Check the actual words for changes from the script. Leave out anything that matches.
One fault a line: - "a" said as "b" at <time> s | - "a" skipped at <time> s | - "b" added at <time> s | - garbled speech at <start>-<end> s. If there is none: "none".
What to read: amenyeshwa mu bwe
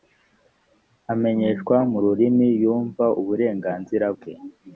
- "rurimi yumva uburenganzira" added at 2.0 s